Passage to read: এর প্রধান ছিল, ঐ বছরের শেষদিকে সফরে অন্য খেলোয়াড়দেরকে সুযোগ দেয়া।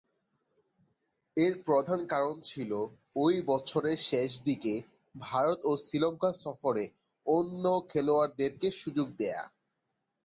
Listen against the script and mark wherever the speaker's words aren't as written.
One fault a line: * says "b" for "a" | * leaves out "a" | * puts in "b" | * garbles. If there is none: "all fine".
* puts in "কারণ"
* puts in "ভারত ও শ্রীলঙ্কা"